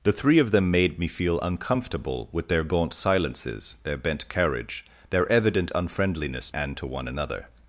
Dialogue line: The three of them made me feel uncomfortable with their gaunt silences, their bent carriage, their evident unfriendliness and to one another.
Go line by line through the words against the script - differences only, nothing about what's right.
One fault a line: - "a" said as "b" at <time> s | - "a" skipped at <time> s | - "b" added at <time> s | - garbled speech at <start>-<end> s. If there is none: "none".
none